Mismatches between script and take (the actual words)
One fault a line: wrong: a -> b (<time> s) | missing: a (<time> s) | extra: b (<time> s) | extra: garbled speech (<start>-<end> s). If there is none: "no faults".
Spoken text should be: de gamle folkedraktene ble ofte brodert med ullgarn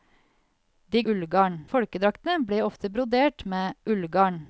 wrong: gamle -> ullgarn (1.1 s)